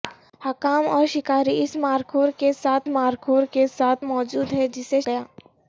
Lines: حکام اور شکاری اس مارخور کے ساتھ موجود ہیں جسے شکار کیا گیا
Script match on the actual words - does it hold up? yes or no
no